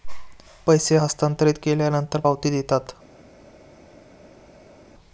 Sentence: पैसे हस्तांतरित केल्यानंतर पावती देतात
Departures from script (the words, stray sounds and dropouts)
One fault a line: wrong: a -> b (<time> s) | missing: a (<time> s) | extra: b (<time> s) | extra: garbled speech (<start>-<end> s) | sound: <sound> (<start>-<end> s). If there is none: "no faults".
no faults